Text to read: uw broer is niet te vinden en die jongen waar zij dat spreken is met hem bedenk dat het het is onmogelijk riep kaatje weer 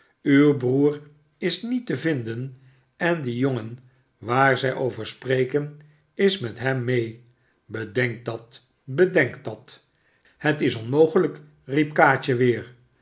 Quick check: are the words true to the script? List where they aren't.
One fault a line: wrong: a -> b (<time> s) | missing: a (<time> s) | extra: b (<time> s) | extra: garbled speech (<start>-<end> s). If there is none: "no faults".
wrong: dat -> over (4.7 s)
extra: mee (6.8 s)
wrong: het -> bedenk dat (8.8 s)